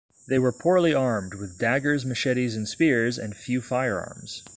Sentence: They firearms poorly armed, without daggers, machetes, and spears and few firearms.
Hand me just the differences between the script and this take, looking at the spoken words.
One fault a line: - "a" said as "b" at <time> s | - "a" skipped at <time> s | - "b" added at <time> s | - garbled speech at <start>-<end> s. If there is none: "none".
- "firearms" said as "were" at 0.4 s
- "without" said as "with" at 1.3 s